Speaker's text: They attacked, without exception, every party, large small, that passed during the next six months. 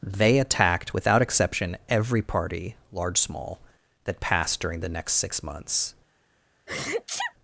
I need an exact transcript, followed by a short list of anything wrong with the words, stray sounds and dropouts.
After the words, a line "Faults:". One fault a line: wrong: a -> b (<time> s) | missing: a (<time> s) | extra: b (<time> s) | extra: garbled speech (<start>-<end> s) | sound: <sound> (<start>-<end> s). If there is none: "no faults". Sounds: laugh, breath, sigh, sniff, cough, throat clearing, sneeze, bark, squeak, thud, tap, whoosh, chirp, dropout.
They attacked, without exception, every party, large small, that passed during the next six months.
Faults:
sound: sneeze (6.7-7.3 s)